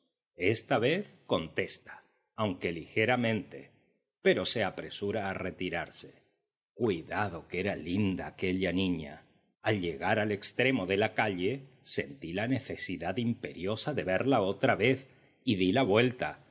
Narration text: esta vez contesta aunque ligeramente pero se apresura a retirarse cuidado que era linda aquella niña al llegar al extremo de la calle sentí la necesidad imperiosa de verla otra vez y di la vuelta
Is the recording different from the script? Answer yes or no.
no